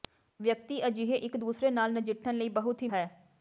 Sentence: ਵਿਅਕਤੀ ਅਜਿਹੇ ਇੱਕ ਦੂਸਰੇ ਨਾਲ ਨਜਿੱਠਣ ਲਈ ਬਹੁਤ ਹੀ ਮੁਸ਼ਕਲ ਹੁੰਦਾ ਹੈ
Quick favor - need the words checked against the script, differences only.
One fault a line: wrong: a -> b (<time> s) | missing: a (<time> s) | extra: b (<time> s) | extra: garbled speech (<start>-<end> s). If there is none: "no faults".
missing: ਮੁਸ਼ਕਲ ਹੁੰਦਾ (2.9 s)